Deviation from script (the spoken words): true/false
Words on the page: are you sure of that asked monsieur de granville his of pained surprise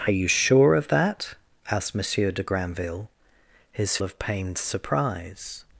false